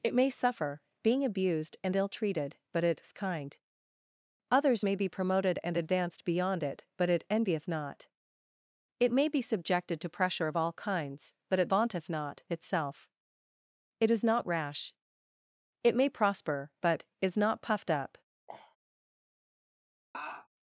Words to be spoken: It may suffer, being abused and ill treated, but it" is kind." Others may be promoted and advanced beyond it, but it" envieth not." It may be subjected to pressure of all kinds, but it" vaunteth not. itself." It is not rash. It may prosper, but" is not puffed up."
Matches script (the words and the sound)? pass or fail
fail